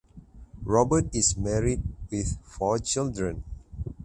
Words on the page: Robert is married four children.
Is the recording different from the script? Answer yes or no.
yes